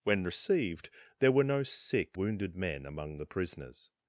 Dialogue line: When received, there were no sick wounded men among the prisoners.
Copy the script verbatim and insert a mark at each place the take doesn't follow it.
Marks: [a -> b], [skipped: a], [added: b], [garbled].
When received, there were no sick wounded men among the prisoners.